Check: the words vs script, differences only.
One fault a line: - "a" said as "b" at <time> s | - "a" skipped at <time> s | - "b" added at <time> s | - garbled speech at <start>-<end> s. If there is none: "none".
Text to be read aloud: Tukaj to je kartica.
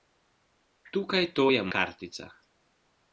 none